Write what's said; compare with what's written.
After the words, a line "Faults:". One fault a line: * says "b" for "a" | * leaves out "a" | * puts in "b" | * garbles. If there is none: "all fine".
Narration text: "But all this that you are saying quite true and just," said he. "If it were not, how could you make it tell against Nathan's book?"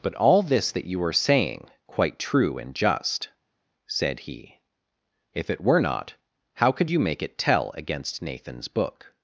"But all this that you are saying quite true and just," said he. "If it were not, how could you make it tell against Nathan's book?"
Faults:
all fine